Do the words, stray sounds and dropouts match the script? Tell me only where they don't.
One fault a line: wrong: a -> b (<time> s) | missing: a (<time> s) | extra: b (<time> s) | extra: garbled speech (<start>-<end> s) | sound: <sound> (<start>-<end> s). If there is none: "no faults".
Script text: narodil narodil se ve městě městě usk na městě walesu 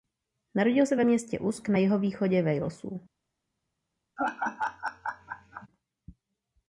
missing: narodil (0.8 s)
missing: městě (1.4 s)
wrong: městě -> jihovýchodě (1.8 s)
sound: laugh (4.2-5.7 s)